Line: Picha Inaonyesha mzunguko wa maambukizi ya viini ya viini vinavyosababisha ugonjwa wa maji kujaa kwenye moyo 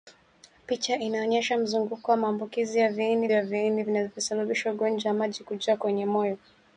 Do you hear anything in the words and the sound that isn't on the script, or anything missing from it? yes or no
no